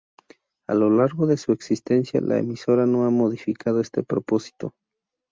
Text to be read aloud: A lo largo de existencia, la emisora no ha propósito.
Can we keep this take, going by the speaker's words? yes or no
no